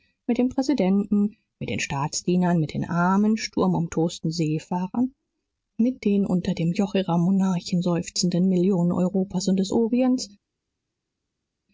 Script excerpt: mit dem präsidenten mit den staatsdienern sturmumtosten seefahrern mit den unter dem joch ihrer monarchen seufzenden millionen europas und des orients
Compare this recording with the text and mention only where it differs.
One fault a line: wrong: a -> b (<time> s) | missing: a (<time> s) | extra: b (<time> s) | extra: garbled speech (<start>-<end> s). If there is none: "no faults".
extra: mit den armen (2.6 s)